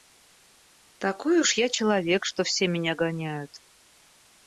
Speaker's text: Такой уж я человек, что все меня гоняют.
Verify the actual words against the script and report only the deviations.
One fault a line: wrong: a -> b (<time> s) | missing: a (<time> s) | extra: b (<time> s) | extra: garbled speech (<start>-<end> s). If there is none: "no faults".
no faults